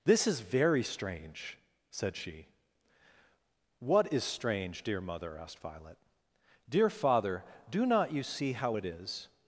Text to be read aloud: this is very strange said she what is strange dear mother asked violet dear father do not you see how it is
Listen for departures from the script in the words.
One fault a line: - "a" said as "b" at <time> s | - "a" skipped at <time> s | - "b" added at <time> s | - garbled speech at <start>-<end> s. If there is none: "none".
none